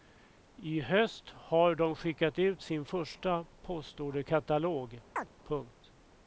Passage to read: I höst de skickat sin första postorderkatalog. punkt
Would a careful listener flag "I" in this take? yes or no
no